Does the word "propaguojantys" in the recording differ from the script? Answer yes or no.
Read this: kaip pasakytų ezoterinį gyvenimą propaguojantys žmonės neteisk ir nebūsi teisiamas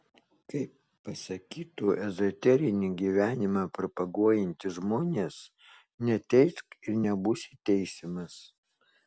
no